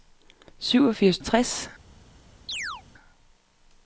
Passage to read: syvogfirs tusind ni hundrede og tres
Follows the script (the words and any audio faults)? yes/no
no